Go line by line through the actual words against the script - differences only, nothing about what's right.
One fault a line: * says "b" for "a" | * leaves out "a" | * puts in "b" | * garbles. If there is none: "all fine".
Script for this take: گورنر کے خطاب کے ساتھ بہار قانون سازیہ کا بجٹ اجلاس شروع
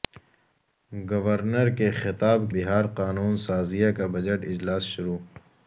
* leaves out "کے ساتھ"